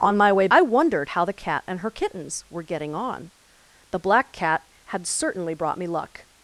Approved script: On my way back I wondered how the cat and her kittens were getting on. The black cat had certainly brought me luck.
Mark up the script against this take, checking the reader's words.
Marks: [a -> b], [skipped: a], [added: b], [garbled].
On my way [skipped: back] I wondered how the cat and her kittens were getting on. The black cat had certainly brought me luck.